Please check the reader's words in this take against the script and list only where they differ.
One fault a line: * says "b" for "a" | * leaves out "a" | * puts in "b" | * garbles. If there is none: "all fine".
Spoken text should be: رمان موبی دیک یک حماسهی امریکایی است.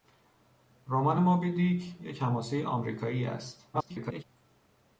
* garbles